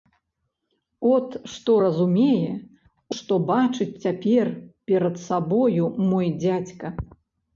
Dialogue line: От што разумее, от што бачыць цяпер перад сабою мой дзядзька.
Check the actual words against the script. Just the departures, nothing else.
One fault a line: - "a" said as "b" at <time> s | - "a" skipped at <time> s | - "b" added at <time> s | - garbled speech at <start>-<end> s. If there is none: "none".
- "от" skipped at 2.5 s